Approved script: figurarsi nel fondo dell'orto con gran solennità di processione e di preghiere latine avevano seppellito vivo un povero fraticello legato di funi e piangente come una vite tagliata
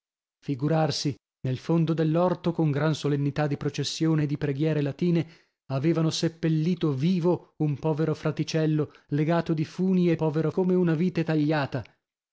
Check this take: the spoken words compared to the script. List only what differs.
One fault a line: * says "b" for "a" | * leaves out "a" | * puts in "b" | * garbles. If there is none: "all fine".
* says "povero" for "piangente"